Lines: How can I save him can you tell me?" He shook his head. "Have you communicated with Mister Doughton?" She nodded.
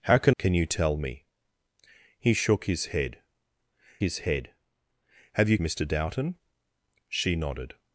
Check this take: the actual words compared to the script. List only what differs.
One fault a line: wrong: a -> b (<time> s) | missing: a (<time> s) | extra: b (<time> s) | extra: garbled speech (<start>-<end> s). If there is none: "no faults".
missing: I save him (0.3 s)
extra: his head (4.0 s)
missing: communicated with (5.6 s)